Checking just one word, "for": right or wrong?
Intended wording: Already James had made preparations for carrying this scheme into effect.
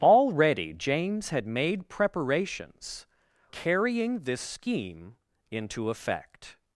wrong